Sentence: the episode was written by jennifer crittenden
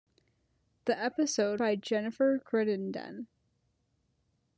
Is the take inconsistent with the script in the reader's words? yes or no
yes